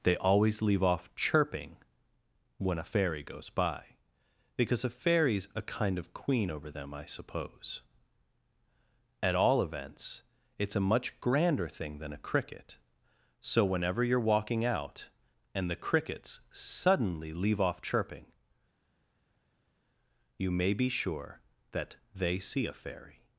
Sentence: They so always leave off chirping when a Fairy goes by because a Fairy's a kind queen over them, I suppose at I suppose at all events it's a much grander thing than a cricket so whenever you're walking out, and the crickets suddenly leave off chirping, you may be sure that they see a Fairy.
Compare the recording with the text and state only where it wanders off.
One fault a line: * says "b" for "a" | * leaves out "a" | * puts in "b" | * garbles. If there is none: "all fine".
* leaves out "so"
* puts in "of"
* leaves out "I suppose at"